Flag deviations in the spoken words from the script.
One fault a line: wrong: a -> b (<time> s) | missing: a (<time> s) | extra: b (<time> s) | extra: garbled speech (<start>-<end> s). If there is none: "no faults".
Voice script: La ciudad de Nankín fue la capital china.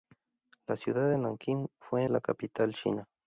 no faults